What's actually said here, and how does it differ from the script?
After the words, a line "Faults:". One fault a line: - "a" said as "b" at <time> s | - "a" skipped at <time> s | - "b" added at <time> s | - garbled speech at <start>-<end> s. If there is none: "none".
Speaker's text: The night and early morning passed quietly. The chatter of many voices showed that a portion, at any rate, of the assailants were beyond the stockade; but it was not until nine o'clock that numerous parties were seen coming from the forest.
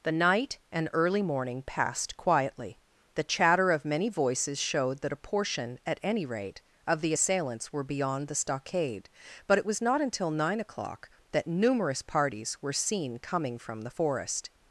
The night and early morning passed quietly. The chatter of many voices showed that a portion, at any rate, of the assailants were beyond the stockade; but it was not until nine o'clock that numerous parties were seen coming from the forest.
Faults:
none